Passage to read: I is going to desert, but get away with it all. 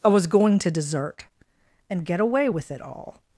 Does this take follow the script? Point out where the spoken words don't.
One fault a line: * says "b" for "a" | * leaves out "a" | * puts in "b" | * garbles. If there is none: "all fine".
* says "was" for "is"
* says "and" for "but"